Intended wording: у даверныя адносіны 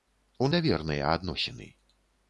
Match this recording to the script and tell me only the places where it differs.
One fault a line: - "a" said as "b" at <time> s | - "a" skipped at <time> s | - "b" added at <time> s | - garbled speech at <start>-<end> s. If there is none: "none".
none